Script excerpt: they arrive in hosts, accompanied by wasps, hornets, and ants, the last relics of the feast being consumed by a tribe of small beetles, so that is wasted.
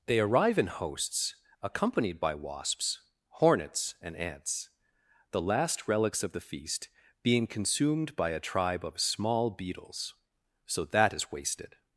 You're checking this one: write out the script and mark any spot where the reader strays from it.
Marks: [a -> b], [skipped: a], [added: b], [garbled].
they arrive in hosts, accompanied by wasps, hornets, and ants, the last relics of the feast being consumed by a tribe of small beetles, so that is wasted.